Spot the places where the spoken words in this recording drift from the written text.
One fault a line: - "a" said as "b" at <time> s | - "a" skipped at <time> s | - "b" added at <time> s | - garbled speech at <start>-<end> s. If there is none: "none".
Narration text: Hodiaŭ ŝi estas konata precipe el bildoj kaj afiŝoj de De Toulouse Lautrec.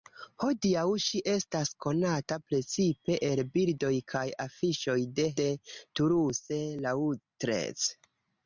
none